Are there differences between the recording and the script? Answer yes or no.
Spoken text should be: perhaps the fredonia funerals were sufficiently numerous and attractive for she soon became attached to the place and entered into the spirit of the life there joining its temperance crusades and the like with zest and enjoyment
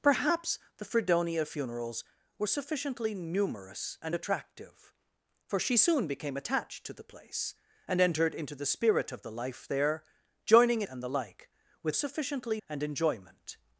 yes